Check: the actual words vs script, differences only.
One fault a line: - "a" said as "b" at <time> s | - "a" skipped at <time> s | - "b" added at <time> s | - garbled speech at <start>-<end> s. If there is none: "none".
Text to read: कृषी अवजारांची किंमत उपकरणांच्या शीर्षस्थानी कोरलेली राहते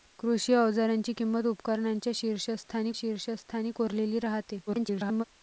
- "शीर्षस्थानी" added at 2.9 s
- garbled speech at 4.7-5.2 s